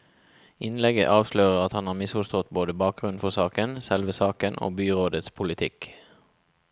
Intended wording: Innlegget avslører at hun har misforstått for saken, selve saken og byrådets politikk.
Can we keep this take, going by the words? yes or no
no